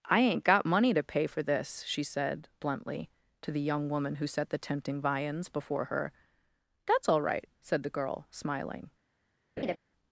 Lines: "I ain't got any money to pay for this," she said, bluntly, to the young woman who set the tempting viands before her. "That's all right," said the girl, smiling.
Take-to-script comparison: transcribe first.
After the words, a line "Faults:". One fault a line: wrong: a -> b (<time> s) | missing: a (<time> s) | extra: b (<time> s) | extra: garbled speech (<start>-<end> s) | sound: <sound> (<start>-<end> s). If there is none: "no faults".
"I ain't got money to pay for this," she said, bluntly, to the young woman who set the tempting viands before her. "That's all right," said the girl, smiling.
Faults:
missing: any (0.7 s)
sound: laugh (9.6-9.8 s)